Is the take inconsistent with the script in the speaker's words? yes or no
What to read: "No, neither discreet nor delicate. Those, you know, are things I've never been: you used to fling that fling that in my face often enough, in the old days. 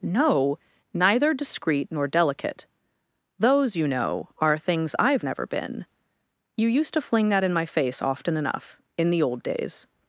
yes